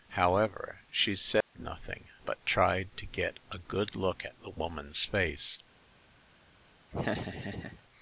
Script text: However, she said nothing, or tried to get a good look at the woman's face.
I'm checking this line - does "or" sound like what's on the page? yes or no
no